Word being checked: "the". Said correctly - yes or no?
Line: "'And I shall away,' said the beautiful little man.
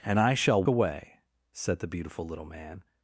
yes